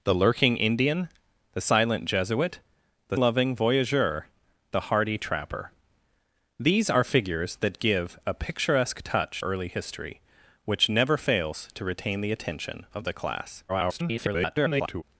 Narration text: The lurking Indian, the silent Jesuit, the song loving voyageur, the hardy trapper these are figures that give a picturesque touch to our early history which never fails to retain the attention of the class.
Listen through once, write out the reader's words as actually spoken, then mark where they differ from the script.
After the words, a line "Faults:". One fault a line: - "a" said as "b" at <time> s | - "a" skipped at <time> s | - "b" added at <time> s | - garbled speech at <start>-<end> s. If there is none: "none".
The lurking Indian, the silent Jesuit, the loving voyageur, the hardy trapper these are figures that give a picturesque touch early history which never fails to retain the attention of the class. [garbled]
Faults:
- "song" skipped at 3.2 s
- "to our" skipped at 9.4 s
- garbled speech at 13.7-15.0 s